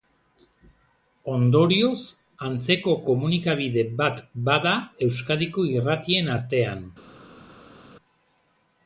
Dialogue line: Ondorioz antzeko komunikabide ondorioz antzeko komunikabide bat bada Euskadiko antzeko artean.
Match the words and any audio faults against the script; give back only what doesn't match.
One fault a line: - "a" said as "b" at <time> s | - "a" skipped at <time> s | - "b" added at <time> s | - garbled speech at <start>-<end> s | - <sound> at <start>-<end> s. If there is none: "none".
- "ondorioz antzeko komunikabide" skipped at 3.9 s
- "antzeko" said as "irratien" at 5.8 s